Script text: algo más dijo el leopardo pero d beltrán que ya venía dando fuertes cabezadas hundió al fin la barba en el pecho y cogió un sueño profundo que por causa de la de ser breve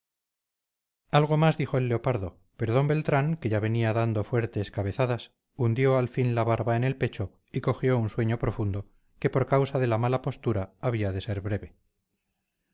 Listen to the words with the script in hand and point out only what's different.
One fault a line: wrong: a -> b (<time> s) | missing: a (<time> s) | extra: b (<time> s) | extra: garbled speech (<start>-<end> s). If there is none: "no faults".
extra: mala postura había (10.0 s)